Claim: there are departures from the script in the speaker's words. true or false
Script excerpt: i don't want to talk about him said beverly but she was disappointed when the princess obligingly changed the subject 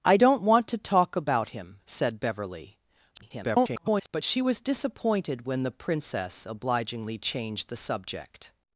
true